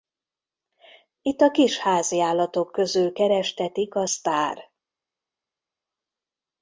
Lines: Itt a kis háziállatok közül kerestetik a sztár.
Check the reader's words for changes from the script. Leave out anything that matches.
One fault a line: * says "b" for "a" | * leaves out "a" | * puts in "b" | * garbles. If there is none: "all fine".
all fine